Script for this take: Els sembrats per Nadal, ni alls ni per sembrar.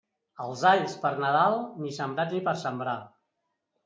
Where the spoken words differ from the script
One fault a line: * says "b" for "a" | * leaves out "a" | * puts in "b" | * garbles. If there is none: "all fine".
* says "alls" for "sembrats"
* says "sembrats" for "alls"